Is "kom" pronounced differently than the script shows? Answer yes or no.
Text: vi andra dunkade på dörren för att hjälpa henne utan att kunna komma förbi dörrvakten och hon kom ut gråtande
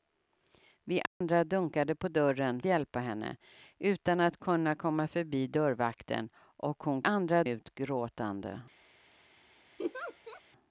yes